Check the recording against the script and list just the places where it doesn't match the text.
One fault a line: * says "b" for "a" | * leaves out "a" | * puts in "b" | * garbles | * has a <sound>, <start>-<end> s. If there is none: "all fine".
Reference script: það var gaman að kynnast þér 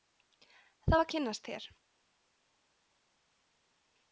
* leaves out "gaman"